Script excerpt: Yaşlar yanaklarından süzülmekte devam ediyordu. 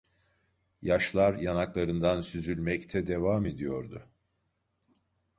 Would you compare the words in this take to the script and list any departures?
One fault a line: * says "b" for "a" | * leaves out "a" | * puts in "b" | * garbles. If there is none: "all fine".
all fine